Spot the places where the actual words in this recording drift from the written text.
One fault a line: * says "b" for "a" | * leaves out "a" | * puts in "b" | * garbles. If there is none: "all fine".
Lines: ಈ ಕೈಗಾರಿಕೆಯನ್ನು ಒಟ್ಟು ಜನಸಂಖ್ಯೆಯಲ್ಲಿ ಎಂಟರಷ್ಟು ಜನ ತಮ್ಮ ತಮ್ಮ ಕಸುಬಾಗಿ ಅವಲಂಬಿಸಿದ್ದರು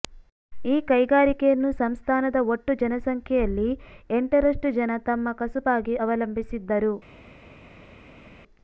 * puts in "ಸಂಸ್ಥಾನದ"
* leaves out "ತಮ್ಮ"